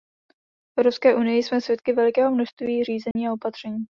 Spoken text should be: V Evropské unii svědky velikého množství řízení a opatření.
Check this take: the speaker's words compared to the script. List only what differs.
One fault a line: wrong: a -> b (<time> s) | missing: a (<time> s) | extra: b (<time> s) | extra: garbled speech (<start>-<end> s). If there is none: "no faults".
extra: jsme (1.4 s)